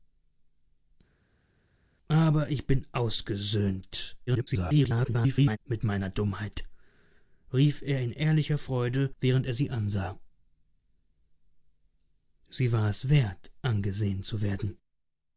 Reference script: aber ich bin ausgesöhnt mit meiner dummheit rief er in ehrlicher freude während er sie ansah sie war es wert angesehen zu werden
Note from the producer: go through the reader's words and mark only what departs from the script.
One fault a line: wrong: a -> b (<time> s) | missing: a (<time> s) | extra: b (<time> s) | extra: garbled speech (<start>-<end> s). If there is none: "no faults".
extra: garbled speech (4.3-5.6 s)